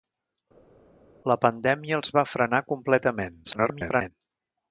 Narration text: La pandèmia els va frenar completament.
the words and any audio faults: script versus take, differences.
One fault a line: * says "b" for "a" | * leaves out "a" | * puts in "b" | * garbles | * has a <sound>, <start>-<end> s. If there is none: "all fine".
* garbles